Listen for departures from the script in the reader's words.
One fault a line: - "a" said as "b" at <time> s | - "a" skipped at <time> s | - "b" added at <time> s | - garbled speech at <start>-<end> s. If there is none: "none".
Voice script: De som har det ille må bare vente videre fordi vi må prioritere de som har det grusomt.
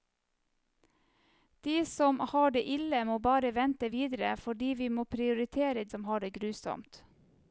- "de" skipped at 5.8 s